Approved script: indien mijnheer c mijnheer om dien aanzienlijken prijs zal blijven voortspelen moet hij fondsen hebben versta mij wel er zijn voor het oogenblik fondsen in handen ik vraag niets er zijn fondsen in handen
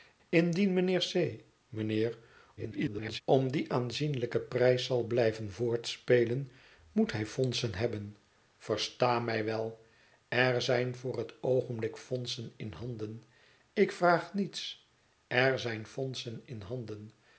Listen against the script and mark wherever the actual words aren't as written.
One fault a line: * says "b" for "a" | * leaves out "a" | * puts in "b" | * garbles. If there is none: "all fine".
* garbles